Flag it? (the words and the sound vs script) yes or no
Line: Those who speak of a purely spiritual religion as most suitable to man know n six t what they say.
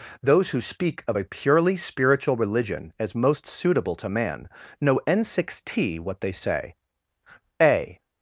yes